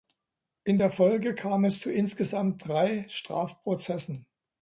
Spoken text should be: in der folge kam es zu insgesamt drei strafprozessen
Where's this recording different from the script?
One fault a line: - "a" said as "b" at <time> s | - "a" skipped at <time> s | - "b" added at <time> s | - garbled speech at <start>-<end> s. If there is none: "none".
none